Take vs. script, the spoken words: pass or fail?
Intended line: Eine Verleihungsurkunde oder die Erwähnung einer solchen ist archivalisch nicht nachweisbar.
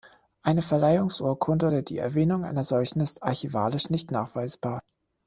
pass